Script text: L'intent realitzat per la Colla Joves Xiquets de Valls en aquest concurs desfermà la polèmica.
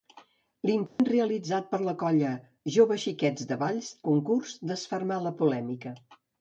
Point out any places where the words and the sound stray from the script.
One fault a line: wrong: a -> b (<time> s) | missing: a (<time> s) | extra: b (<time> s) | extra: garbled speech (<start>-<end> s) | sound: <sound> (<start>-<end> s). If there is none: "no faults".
sound: dropout (0.9-1.0 s)
missing: en aquest (3.9 s)